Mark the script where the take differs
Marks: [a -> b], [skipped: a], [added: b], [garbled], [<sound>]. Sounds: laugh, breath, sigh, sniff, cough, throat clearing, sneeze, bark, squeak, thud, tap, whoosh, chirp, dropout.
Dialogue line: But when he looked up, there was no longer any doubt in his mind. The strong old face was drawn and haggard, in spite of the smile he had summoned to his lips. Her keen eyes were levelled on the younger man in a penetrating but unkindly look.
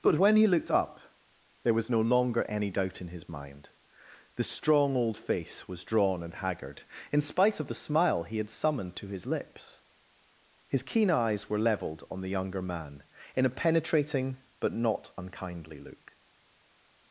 But when he looked up, there was no longer any doubt in his mind. The strong old face was drawn and haggard, in spite of the smile he had summoned to his lips. [Her -> His] keen eyes were levelled on the younger man in a penetrating but [added: not] unkindly look.